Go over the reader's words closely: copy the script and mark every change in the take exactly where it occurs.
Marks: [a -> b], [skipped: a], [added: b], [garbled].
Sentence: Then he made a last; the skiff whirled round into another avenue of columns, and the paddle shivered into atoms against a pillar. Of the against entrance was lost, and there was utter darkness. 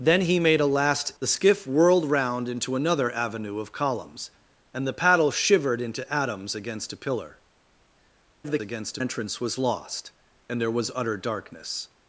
Then he made a last; the skiff whirled round into another avenue of columns, and the paddle shivered into atoms against a pillar. Of the against entrance was lost, and there was utter darkness.